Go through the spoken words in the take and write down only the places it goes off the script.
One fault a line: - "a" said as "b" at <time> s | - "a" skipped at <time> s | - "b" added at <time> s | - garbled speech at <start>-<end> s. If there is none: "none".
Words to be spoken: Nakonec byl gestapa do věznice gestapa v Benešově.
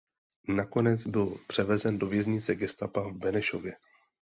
- "gestapa" said as "převezen" at 1.5 s